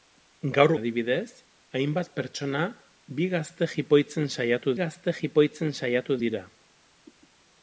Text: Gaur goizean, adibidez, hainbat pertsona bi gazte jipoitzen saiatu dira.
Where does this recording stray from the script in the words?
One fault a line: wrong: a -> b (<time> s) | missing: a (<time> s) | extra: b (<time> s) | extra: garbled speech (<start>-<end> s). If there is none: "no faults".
missing: goizean (0.7 s)
extra: gazte jipoitzen saiatu (4.8 s)